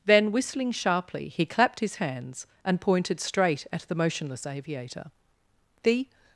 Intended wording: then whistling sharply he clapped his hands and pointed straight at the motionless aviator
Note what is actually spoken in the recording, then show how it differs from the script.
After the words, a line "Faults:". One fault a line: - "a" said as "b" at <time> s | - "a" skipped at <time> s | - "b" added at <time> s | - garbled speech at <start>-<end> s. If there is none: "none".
then whistling sharply he clapped his hands and pointed straight at the motionless aviator the
Faults:
- "the" added at 5.8 s